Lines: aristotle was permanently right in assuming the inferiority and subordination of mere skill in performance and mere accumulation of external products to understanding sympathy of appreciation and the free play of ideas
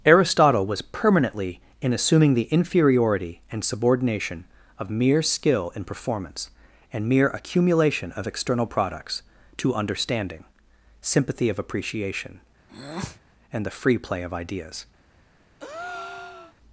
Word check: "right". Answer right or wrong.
wrong